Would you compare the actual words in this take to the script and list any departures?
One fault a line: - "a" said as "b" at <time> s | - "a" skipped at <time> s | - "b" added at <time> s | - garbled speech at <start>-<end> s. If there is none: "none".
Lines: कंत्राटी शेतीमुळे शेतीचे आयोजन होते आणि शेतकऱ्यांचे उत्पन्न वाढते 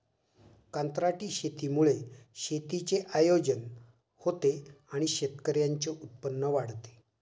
none